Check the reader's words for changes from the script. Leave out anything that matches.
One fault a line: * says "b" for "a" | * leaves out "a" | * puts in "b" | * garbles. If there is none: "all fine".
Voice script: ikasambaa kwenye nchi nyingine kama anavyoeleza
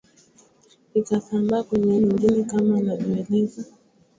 * leaves out "nchi"